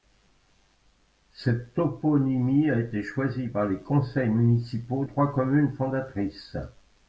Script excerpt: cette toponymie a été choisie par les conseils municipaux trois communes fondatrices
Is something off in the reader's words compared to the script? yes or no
no